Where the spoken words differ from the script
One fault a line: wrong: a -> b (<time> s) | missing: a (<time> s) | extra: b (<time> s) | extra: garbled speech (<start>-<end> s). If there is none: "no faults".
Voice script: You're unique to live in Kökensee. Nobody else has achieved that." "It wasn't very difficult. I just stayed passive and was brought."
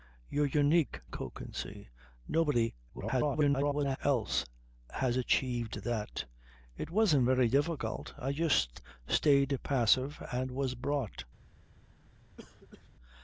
missing: to live in (1.0 s)
extra: garbled speech (2.9-4.0 s)